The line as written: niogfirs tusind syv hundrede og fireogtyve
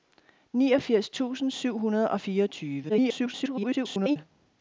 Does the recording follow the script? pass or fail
fail